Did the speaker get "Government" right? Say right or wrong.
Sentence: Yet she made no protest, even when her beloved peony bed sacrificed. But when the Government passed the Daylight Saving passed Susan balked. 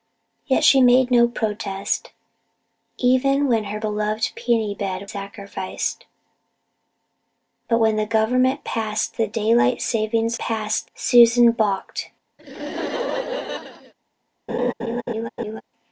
right